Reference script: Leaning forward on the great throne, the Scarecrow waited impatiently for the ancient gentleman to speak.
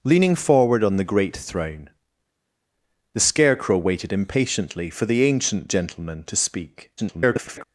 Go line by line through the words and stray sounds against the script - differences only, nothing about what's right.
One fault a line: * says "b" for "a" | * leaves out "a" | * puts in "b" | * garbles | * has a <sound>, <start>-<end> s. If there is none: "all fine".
* garbles